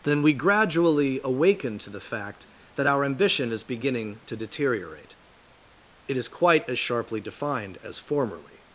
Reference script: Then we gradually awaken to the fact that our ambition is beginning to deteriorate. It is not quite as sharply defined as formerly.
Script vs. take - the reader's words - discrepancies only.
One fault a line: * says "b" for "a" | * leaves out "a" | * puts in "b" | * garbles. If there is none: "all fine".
* leaves out "not"